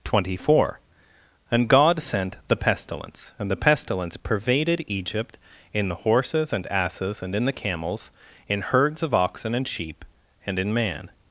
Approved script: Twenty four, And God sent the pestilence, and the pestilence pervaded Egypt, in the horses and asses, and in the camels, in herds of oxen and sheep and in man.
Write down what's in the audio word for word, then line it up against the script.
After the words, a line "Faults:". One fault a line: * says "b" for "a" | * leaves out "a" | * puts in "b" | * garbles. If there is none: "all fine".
Twenty four, And God sent the pestilence, and the pestilence pervaded Egypt, in the horses and asses, and in the camels, in herds of oxen and sheep and in man.
Faults:
all fine